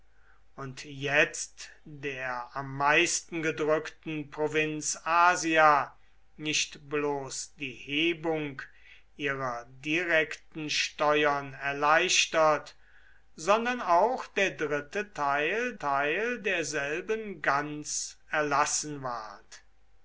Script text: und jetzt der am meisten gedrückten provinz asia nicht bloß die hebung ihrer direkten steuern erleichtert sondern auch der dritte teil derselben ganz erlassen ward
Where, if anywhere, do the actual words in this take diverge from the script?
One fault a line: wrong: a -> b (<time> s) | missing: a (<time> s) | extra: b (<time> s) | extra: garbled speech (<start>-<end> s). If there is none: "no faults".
extra: teil (15.8 s)